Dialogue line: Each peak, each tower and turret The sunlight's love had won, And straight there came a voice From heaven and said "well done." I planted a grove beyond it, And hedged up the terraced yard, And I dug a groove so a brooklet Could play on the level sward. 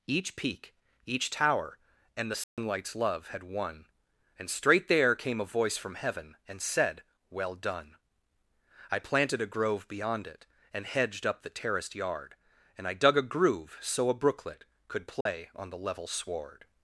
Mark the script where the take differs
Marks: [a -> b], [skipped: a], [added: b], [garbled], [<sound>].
Each peak, each tower and [skipped: turret] The sunlight's [dropout] love had won, And straight there came a voice From heaven and said "well done." I planted a grove beyond it, And hedged up the terraced yard, And I dug a groove so a brooklet Could play [dropout] on the level sward.